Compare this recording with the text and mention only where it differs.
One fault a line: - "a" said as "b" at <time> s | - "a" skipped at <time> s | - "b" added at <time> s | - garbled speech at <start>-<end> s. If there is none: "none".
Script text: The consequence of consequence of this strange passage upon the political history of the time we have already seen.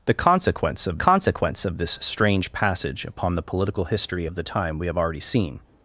none